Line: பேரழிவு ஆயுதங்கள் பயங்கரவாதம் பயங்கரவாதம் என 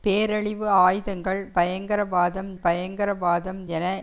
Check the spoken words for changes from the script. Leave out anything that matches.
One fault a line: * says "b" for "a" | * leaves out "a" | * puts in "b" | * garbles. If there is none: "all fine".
all fine